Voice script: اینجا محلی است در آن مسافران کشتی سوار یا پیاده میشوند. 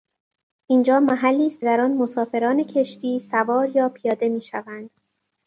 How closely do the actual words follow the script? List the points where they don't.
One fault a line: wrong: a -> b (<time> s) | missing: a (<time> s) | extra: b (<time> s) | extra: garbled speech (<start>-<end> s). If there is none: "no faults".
no faults